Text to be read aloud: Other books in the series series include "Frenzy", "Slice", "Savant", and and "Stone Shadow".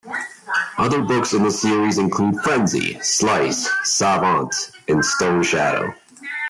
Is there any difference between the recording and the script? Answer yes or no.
yes